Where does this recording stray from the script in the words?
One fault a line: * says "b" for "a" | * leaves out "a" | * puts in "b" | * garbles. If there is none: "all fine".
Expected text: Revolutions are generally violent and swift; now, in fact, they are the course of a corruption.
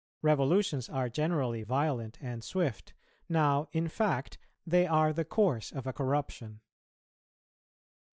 all fine